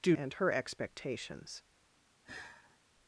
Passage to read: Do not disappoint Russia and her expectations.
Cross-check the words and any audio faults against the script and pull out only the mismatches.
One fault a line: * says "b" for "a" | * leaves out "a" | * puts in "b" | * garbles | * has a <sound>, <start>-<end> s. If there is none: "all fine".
* leaves out "not disappoint Russia"
* has a sigh, 2.2-2.8 s